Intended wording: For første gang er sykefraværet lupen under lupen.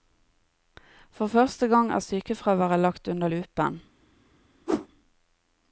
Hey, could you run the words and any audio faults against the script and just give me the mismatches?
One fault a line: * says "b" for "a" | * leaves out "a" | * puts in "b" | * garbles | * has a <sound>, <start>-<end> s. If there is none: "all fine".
* says "lagt" for "lupen"
* has a whoosh, 4.7-4.9 s